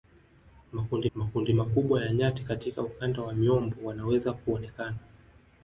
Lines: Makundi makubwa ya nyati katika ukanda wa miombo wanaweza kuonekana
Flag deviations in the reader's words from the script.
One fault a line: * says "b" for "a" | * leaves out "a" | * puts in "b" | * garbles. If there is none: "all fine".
* puts in "makundi"